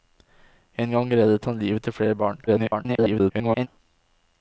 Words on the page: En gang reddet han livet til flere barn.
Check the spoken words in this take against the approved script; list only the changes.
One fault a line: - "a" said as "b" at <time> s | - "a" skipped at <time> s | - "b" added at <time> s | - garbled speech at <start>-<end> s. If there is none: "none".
- garbled speech at 2.5-3.7 s